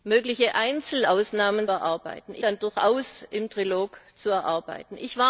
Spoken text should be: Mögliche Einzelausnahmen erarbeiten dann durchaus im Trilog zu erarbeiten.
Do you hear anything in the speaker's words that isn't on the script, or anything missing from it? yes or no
no